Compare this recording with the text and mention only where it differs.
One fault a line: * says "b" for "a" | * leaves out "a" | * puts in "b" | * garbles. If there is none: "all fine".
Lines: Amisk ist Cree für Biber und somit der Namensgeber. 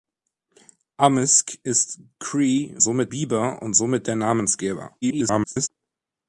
* says "somit" for "für"
* garbles